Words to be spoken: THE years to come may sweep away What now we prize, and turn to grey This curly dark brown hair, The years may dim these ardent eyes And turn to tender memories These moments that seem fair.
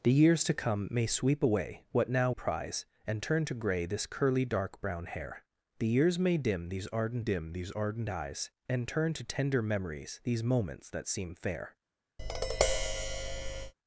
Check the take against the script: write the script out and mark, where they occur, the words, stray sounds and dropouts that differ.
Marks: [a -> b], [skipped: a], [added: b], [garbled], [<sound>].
THE years to come may sweep away What now [skipped: we] prize, and turn to grey This curly dark brown hair, The years may dim these ardent [added: dim these ardent] eyes And turn to tender memories These moments that seem fair. [tap]